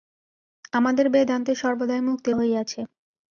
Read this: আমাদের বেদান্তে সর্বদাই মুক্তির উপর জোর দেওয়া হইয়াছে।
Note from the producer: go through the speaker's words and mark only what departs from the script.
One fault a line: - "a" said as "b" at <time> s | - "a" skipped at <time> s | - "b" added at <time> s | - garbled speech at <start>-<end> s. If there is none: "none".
- "উপর জোর দেওয়া" skipped at 2.4 s